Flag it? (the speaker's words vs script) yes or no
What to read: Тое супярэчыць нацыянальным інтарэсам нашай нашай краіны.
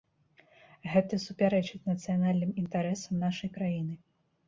yes